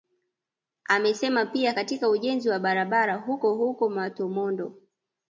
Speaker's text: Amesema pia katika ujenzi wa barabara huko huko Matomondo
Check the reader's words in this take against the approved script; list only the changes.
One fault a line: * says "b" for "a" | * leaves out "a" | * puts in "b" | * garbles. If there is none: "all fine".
all fine